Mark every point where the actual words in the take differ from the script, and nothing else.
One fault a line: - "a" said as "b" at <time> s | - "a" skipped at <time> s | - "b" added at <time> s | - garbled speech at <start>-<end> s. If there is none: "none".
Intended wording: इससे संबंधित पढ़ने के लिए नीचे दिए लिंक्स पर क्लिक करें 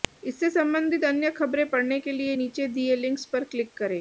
- "अन्य खबरें" added at 1.1 s